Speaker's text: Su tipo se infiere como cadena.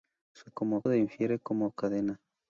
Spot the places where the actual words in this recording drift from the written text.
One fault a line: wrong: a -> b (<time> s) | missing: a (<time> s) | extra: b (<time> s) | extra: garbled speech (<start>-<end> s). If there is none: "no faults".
wrong: tipo -> como (0.5 s)